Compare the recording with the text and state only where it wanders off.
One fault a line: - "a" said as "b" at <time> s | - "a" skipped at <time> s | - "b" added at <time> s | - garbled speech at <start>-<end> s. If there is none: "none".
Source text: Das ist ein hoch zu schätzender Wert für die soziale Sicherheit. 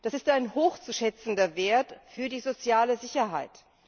none